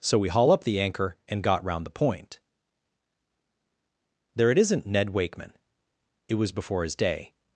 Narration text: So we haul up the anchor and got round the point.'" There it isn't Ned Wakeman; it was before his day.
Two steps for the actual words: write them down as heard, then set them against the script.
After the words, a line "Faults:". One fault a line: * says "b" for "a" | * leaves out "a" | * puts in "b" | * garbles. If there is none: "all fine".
So we haul up the anchor and got round the point.'" There it isn't Ned Wakeman; it was before his day.
Faults:
all fine